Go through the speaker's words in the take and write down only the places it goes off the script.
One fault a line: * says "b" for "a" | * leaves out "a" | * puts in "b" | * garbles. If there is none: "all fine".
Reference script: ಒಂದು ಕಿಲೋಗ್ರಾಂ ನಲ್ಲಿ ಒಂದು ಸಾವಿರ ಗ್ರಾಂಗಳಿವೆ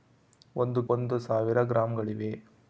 * leaves out "ಕಿಲೋಗ್ರಾಂ ನಲ್ಲಿ"